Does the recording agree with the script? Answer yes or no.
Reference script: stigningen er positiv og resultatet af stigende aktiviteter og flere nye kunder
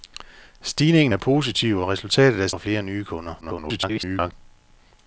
no